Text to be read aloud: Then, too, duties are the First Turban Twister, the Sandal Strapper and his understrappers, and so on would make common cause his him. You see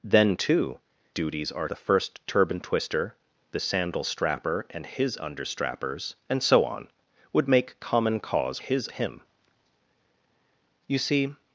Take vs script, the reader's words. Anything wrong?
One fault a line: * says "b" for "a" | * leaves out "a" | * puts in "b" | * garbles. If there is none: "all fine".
all fine